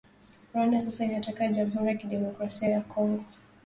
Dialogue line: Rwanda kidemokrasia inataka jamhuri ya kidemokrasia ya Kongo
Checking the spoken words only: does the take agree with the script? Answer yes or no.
no